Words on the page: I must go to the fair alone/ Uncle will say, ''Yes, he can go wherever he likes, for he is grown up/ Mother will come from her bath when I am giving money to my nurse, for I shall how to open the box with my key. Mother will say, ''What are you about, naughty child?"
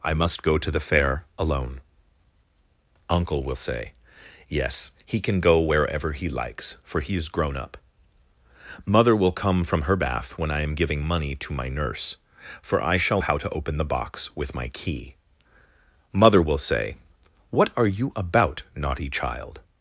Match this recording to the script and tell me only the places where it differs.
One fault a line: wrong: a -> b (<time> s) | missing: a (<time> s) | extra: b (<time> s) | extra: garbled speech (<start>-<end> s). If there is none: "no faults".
no faults